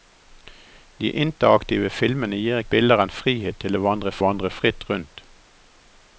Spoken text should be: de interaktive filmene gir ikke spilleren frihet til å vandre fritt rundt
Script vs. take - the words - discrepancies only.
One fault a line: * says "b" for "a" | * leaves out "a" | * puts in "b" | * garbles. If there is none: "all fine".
* leaves out "ikke"
* puts in "vandre"